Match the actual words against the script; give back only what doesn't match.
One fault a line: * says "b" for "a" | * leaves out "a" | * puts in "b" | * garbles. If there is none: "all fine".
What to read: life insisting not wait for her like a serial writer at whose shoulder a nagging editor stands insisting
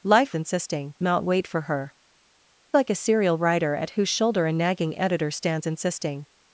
all fine